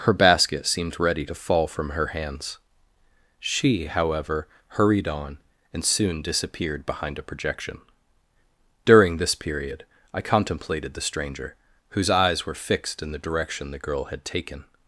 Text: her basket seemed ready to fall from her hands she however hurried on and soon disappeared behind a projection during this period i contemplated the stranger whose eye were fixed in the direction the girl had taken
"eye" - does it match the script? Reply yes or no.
no